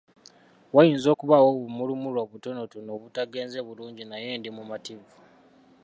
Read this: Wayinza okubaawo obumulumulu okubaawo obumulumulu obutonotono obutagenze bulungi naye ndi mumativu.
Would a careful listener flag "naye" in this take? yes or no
no